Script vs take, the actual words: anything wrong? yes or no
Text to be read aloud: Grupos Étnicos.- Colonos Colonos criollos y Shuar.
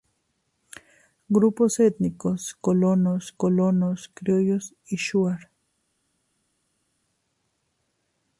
no